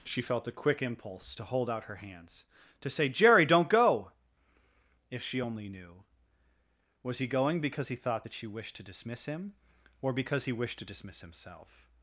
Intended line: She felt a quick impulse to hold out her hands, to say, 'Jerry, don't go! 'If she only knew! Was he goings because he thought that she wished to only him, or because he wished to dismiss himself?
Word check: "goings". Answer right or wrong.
wrong